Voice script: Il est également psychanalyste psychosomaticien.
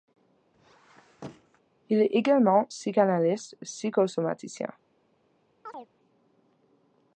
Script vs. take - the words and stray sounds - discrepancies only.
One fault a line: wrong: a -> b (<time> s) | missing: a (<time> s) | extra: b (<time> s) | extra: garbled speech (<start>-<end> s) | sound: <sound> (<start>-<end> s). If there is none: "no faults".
sound: squeak (0.5-1.6 s)
sound: chirp (5.7-5.9 s)